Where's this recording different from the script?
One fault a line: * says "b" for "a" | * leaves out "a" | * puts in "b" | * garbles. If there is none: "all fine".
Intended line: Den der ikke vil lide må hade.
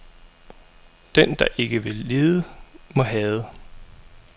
all fine